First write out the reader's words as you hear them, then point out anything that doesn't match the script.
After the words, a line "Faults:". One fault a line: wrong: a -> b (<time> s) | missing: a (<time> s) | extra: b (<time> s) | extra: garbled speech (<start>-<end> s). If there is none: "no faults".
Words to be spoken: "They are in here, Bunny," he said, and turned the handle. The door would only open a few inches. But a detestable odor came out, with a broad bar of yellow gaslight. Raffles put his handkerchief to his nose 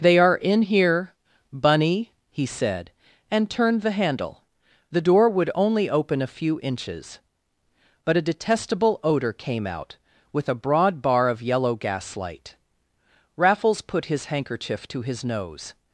"They are in here, Bunny," he said, and turned the handle. The door would only open a few inches. But a detestable odor came out, with a broad bar of yellow gaslight. Raffles put his handkerchief to his nose
Faults:
no faults